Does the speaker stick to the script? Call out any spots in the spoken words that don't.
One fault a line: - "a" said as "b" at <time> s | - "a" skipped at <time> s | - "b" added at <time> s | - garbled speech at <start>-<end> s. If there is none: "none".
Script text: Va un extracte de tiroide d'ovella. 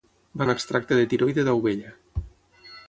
none